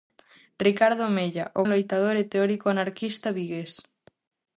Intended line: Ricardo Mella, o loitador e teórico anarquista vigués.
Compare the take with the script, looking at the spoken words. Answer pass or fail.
pass